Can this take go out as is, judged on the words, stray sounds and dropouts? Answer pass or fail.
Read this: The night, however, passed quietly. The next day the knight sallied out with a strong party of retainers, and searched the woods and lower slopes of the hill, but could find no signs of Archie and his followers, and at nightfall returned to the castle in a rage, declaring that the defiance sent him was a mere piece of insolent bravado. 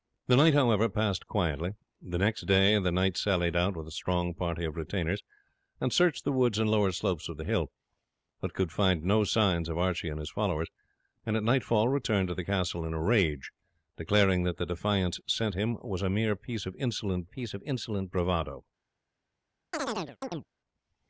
fail